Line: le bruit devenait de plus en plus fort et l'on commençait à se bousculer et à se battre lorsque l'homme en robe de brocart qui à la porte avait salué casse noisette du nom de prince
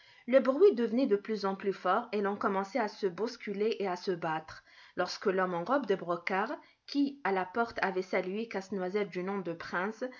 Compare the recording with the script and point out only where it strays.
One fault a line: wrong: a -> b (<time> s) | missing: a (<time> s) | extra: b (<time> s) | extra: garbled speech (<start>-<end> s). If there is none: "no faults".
no faults